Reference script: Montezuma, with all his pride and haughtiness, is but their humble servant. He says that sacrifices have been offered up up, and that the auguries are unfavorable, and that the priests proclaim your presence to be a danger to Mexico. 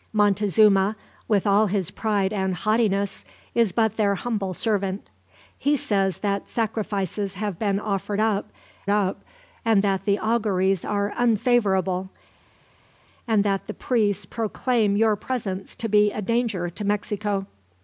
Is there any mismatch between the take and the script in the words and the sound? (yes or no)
no